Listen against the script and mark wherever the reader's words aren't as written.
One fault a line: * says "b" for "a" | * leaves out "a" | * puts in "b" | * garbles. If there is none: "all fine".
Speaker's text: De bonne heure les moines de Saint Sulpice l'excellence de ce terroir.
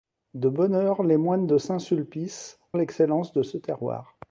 all fine